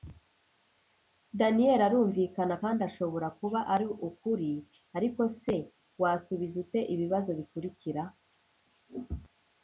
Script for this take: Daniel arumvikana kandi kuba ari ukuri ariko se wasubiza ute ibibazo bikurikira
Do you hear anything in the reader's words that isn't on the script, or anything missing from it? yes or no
yes